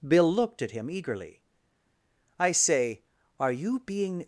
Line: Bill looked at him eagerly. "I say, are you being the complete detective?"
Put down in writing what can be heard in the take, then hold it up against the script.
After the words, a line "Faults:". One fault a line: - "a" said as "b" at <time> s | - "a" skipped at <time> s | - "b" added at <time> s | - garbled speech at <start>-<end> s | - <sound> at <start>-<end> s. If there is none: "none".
Bill looked at him eagerly. "I say, are you being?"
Faults:
- "the complete detective" skipped at 4.2 s